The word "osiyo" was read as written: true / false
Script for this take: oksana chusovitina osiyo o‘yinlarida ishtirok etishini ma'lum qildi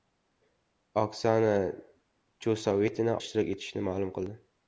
false